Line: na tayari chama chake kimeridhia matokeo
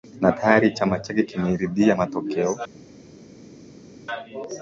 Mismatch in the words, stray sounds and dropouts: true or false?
false